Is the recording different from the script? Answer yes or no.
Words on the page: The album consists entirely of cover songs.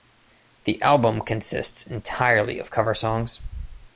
no